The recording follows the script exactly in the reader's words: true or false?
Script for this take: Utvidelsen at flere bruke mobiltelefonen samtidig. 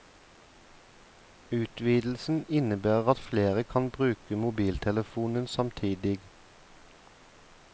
false